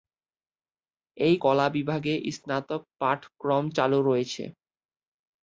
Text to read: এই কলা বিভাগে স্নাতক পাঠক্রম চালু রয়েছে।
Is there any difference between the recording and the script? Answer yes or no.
no